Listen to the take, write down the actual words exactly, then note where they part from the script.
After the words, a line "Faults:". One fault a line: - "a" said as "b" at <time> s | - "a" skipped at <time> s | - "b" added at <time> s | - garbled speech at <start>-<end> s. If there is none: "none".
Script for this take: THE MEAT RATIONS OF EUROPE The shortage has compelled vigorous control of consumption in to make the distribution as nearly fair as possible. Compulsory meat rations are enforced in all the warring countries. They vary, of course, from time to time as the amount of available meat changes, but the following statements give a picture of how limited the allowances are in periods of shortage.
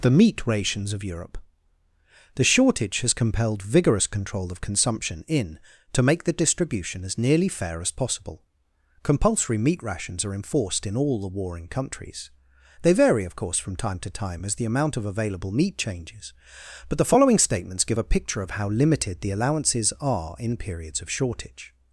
THE MEAT RATIONS OF EUROPE The shortage has compelled vigorous control of consumption in to make the distribution as nearly fair as possible. Compulsory meat rations are enforced in all the warring countries. They vary, of course, from time to time as the amount of available meat changes, but the following statements give a picture of how limited the allowances are in periods of shortage.
Faults:
none